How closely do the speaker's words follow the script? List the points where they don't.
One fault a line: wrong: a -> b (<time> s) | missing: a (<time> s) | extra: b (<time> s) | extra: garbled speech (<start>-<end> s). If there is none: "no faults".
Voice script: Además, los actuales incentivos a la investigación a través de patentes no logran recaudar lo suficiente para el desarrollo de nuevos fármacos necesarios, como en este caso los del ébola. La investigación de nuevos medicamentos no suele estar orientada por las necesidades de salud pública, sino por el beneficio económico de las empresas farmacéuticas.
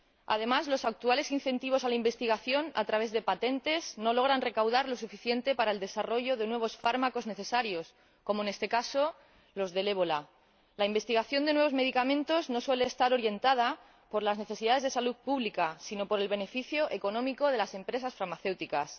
no faults